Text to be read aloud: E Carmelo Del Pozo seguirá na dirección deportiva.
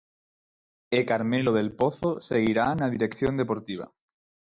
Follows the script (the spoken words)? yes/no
yes